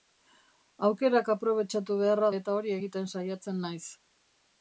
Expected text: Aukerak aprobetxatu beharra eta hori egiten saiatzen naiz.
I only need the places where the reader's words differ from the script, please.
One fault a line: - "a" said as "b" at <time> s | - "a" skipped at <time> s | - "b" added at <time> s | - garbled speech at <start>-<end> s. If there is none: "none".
none